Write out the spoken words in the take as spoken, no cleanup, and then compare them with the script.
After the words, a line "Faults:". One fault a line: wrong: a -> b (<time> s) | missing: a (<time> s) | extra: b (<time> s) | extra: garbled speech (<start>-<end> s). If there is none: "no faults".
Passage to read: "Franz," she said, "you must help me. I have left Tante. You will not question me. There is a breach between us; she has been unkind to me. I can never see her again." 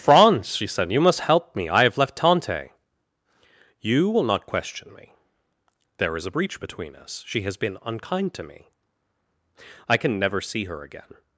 "Franz," she said, "you must help me. I have left Tante. You will not question me. There is a breach between us; she has been unkind to me. I can never see her again."
Faults:
no faults